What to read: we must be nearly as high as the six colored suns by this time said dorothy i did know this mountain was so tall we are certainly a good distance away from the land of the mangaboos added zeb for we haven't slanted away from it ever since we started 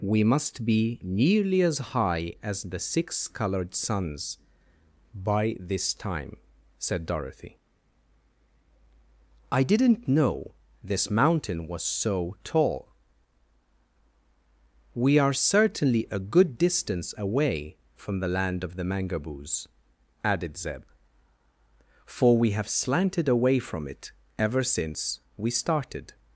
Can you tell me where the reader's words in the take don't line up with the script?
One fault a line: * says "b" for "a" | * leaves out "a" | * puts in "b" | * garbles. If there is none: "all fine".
* says "didn't" for "did"
* says "have" for "haven't"